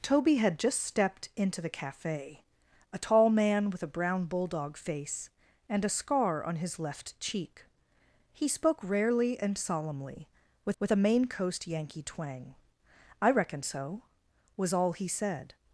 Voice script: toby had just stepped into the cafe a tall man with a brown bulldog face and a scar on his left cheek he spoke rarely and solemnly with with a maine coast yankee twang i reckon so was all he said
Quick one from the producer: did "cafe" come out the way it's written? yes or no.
yes